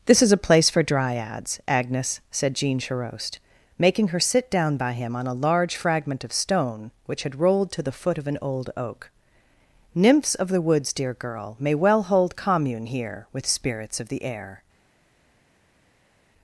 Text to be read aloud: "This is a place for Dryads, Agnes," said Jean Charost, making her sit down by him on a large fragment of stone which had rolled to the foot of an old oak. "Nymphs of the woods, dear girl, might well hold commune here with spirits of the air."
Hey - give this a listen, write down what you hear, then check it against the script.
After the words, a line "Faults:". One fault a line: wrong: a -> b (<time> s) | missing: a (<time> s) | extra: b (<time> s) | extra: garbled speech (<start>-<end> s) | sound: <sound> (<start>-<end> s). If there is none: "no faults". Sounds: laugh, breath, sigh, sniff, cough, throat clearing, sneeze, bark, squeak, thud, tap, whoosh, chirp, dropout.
"This is a place for Dryads, Agnes," said Jean Charost, making her sit down by him on a large fragment of stone which had rolled to the foot of an old oak. "Nymphs of the woods, dear girl, may well hold commune here with spirits of the air."
Faults:
wrong: might -> may (11.6 s)